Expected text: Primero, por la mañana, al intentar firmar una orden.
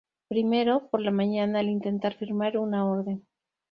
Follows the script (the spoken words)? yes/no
yes